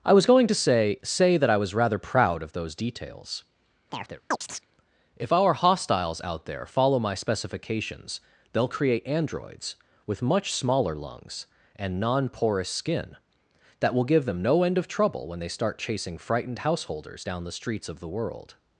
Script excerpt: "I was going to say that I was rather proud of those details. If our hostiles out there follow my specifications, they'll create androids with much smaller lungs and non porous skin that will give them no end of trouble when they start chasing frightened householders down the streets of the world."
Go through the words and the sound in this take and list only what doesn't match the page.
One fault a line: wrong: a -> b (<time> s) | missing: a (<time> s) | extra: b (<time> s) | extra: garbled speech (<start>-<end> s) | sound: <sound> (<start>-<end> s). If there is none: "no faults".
extra: say (1.0 s)
sound: chirp (3.9-4.7 s)